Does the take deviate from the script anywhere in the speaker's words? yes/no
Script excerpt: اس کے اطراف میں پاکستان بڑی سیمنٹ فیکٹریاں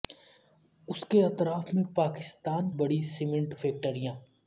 no